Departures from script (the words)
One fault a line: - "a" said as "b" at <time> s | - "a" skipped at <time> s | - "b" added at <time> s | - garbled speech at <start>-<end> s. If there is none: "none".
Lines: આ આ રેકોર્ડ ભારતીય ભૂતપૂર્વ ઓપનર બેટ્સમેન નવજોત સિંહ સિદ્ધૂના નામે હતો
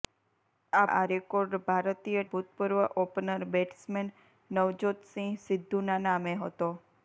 none